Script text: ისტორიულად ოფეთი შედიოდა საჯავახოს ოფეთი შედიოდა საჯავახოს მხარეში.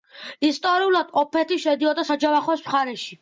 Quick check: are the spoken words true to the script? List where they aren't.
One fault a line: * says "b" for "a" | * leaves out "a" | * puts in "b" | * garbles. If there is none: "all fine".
* leaves out "ოფეთი შედიოდა საჯავახოს"